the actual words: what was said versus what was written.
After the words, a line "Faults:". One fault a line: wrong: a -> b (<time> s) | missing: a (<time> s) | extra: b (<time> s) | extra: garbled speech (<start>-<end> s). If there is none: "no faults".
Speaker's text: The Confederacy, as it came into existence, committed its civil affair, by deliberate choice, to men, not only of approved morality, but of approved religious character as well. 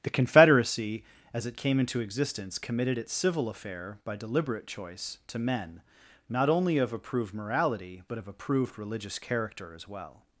The Confederacy, as it came into existence, committed its civil affair, by deliberate choice, to men, not only of approved morality, but of approved religious character as well.
Faults:
no faults